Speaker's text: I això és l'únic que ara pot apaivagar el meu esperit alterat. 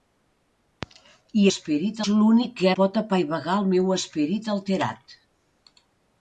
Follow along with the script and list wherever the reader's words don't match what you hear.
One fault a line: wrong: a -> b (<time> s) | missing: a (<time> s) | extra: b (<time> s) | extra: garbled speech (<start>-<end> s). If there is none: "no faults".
wrong: això -> esperit (1.5 s)
missing: ara (2.7 s)